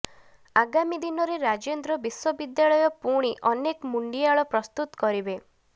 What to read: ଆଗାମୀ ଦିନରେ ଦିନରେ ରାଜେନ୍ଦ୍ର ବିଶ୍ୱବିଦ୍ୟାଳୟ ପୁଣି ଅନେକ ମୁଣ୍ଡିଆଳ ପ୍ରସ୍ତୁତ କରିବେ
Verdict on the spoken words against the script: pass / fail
fail